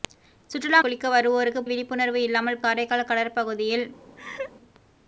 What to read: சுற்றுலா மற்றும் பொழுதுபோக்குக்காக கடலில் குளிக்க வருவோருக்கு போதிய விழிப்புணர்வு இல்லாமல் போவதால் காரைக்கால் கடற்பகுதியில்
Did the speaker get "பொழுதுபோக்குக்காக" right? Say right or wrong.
wrong